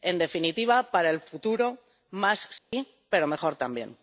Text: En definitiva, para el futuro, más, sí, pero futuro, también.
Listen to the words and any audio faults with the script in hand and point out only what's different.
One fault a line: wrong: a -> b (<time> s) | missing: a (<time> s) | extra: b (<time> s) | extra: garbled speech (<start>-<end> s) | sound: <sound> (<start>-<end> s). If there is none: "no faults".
sound: dropout (2.6-2.7 s)
wrong: futuro -> mejor (3.3 s)